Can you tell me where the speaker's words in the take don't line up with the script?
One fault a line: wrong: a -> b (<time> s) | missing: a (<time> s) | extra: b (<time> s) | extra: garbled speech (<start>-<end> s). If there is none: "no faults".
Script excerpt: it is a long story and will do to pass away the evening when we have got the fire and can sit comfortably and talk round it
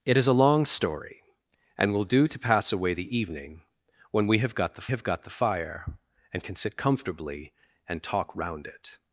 extra: have got the (4.9 s)